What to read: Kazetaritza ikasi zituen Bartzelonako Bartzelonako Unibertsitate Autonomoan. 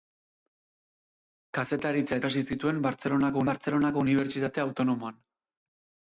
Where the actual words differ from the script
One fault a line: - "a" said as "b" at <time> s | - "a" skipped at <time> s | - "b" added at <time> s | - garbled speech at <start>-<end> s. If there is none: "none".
none